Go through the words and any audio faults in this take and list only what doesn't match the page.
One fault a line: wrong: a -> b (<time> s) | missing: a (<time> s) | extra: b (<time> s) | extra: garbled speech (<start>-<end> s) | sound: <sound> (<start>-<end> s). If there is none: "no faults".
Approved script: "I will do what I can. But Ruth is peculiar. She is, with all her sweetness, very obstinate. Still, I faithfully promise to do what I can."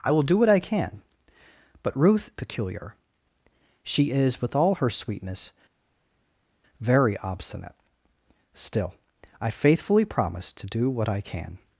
missing: is (2.3 s)